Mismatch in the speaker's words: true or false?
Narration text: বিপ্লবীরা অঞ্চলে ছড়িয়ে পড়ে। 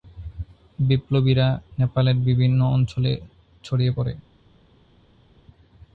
true